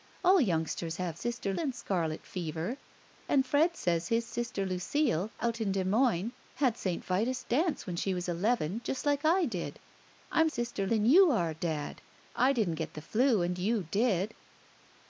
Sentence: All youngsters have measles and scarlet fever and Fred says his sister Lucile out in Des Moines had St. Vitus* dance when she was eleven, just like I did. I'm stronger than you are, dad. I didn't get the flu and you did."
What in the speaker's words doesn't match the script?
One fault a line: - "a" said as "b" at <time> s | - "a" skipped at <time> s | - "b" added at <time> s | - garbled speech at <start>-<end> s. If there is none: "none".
- "measles" said as "sister" at 1.1 s
- "stronger" said as "sister" at 10.5 s